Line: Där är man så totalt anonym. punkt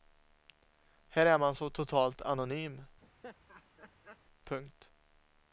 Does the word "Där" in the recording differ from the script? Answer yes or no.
yes